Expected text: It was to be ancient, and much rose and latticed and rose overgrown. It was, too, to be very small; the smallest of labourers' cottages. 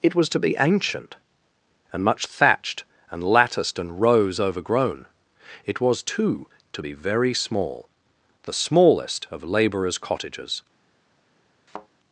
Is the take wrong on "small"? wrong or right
right